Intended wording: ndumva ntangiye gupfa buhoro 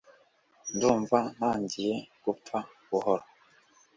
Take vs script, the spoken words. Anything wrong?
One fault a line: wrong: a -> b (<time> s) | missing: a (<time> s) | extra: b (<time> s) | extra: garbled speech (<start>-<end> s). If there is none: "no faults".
no faults